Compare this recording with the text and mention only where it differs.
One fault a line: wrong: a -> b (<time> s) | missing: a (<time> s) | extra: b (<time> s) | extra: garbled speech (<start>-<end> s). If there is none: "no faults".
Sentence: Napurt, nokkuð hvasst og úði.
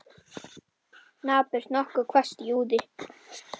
no faults